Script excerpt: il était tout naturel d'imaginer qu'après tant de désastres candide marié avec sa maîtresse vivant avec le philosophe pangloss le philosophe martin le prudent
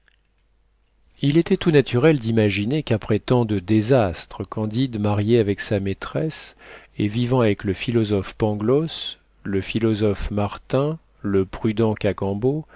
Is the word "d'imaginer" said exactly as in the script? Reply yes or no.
yes